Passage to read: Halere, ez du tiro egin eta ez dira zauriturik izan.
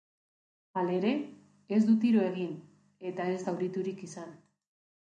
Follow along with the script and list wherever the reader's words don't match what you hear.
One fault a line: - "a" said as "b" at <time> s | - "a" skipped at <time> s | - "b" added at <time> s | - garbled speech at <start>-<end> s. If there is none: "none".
- "dira" skipped at 3.4 s